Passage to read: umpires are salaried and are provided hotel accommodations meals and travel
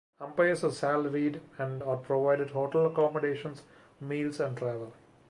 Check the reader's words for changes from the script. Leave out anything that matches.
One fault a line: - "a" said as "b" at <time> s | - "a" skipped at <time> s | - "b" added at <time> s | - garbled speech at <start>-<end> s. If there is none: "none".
none